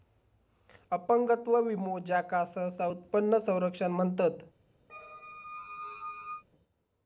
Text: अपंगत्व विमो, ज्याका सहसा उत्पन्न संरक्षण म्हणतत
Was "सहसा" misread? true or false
false